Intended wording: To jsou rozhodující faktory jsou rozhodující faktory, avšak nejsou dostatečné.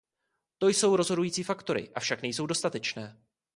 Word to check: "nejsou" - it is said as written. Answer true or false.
true